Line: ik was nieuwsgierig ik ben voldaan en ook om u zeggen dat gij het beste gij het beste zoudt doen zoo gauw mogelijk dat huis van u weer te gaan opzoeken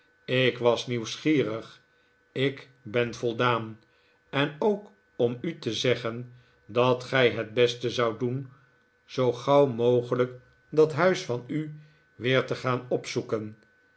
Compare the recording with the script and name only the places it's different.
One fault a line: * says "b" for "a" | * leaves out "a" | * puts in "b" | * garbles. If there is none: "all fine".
* puts in "te"
* leaves out "gij het beste"